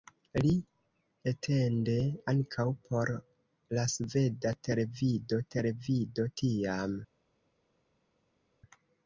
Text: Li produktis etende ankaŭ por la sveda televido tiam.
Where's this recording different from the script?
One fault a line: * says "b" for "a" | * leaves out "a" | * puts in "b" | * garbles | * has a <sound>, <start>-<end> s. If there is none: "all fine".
* leaves out "produktis"
* puts in "televido"